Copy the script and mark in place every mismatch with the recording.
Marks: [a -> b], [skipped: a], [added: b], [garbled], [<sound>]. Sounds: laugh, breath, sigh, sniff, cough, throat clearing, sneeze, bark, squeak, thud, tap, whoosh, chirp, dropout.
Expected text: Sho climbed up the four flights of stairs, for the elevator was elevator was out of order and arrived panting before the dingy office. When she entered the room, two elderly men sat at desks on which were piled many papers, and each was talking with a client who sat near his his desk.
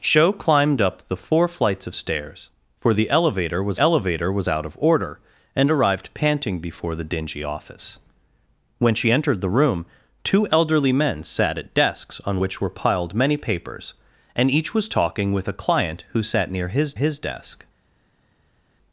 Sho climbed up the four flights of stairs, for the elevator was elevator was out of order and arrived panting before the dingy office. When she entered the room, two elderly men sat at desks on which were piled many papers, and each was talking with a client who sat near his his desk.